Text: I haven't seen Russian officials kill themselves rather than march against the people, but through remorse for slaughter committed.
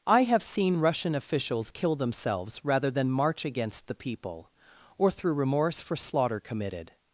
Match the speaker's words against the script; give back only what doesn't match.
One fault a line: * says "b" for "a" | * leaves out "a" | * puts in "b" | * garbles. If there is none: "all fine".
* says "have" for "haven't"
* says "or" for "but"